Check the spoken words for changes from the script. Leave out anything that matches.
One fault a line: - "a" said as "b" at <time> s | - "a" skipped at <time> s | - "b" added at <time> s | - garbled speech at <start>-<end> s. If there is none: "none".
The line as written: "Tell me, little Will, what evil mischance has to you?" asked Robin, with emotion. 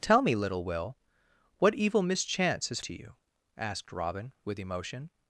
none